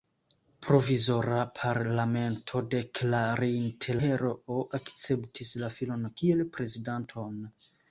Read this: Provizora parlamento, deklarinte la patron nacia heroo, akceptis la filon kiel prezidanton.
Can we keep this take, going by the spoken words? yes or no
no